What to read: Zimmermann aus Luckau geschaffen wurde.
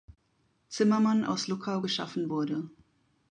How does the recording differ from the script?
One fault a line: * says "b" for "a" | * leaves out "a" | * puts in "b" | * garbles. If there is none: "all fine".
all fine